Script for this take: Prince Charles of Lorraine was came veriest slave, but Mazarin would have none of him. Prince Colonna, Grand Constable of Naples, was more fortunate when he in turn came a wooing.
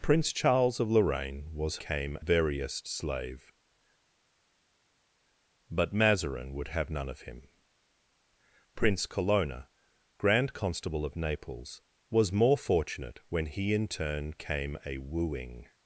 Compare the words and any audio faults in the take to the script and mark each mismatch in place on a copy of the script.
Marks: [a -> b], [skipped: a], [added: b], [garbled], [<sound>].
Prince Charles of Lorraine was came veriest slave, but Mazarin would have none of him. Prince Colonna, Grand Constable of Naples, was more fortunate when he in turn came a wooing.